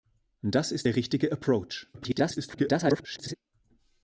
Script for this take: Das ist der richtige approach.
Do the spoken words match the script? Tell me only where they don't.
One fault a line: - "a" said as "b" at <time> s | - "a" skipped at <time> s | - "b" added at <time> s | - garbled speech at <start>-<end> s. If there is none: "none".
- garbled speech at 1.9-3.4 s